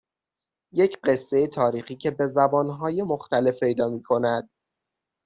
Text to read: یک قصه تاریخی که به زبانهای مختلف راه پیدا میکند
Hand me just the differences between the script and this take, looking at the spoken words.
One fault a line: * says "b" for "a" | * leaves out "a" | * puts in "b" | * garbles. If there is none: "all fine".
* leaves out "راه"